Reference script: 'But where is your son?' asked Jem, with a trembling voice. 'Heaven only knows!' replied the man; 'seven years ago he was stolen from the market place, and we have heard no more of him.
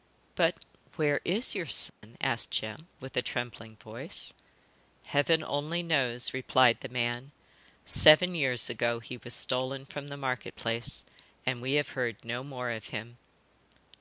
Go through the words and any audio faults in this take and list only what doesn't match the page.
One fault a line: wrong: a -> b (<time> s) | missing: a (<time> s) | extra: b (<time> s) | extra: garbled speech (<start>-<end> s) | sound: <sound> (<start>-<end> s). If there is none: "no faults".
sound: dropout (1.9-2.0 s)